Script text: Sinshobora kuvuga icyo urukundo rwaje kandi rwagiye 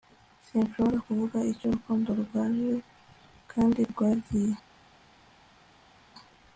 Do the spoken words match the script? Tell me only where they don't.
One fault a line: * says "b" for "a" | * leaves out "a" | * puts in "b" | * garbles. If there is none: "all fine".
all fine